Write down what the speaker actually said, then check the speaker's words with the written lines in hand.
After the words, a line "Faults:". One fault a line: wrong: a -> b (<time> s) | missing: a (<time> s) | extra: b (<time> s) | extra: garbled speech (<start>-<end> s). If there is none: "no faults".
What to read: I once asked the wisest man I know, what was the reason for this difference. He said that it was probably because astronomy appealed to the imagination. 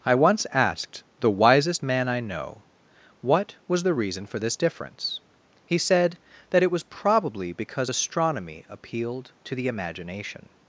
I once asked the wisest man I know, what was the reason for this difference. He said that it was probably because astronomy appealed to the imagination.
Faults:
no faults